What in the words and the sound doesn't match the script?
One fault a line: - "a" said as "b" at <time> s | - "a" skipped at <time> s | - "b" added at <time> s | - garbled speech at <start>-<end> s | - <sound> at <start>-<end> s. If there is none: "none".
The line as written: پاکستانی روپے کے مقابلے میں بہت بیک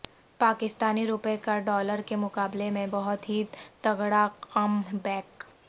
- "کا ڈالر" added at 1.4 s
- "ہی تگڑا کم" added at 3.3 s